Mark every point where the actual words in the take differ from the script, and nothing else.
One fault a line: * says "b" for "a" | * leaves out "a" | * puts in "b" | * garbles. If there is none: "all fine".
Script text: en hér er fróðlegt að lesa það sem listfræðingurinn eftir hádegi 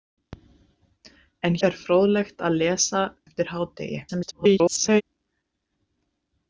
* leaves out "hér"
* leaves out "það sem listfræðingurinn"
* garbles